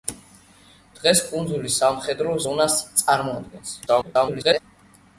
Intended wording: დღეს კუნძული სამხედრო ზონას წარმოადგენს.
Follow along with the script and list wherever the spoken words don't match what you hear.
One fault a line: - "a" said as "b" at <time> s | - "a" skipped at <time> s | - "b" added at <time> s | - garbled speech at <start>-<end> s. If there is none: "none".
- garbled speech at 3.9-4.6 s